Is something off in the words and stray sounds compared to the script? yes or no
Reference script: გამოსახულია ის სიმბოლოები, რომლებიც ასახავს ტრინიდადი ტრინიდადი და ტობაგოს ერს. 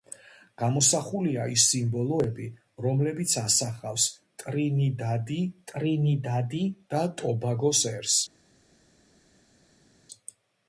no